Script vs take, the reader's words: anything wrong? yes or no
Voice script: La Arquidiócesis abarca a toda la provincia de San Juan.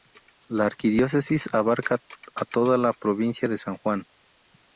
no